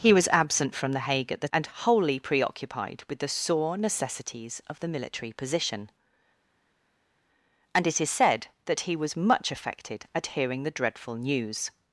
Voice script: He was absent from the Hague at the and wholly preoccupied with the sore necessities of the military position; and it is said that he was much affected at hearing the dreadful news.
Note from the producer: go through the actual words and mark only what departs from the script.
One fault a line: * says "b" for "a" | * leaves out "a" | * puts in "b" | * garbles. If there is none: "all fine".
all fine